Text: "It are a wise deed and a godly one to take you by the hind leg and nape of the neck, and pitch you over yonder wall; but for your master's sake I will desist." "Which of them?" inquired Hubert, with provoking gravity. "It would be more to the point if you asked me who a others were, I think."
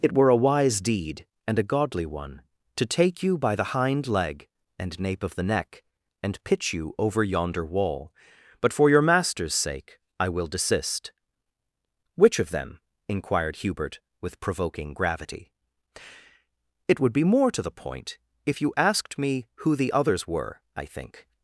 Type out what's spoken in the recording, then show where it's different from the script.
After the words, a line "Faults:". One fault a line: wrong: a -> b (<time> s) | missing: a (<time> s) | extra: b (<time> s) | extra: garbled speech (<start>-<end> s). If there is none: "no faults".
"It were a wise deed and a godly one to take you by the hind leg and nape of the neck, and pitch you over yonder wall; but for your master's sake I will desist." "Which of them?" inquired Hubert, with provoking gravity. "It would be more to the point if you asked me who the others were, I think."
Faults:
wrong: are -> were (0.1 s)
wrong: a -> the (19.8 s)